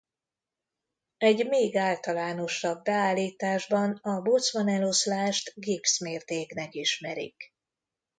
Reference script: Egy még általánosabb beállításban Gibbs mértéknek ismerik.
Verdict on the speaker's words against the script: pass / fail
fail